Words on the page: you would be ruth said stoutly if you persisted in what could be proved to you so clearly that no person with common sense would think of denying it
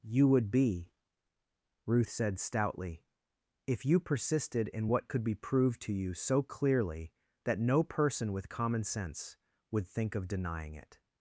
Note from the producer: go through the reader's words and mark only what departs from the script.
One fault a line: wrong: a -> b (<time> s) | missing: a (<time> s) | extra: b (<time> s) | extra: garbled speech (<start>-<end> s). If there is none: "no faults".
no faults